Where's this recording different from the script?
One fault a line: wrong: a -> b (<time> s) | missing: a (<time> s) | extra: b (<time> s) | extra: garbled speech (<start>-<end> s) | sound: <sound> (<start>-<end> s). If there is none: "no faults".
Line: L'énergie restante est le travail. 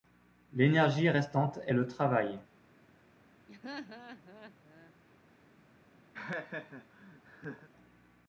sound: laugh (3.5-4.9 s)
sound: laugh (6.1-7.7 s)